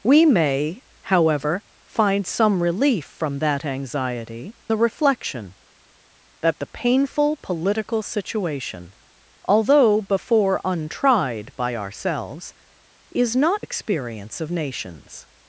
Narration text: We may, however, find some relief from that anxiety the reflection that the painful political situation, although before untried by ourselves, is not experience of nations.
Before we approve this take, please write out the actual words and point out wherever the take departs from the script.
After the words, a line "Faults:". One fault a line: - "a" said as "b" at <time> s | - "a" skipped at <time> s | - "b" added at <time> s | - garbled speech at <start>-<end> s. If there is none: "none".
We may, however, find some relief from that anxiety the reflection that the painful political situation, although before untried by ourselves, is not experience of nations.
Faults:
none